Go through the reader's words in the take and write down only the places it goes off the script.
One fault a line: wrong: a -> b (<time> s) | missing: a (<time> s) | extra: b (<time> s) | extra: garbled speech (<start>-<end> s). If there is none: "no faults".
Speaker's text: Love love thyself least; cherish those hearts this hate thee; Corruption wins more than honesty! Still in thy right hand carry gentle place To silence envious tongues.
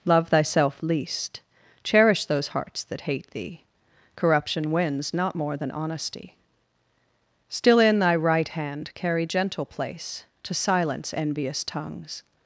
missing: love (0.3 s)
wrong: this -> that (2.8 s)
extra: not (5.1 s)